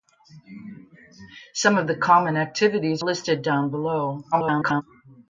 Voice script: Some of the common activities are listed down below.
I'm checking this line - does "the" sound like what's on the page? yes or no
yes